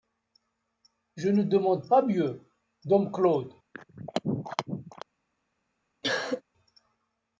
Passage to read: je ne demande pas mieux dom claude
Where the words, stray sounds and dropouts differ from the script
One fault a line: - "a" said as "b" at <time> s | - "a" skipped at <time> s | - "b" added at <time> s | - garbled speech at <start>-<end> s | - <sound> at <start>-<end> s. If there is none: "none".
- throat clearing at 3.7-5.0 s
- cough at 6.0-6.4 s